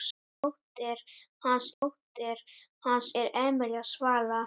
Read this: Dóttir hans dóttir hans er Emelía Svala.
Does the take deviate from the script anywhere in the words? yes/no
no